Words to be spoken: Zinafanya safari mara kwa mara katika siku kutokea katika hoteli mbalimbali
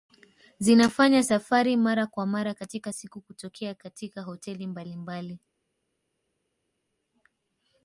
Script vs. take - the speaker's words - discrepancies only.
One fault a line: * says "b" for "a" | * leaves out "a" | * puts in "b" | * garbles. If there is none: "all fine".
all fine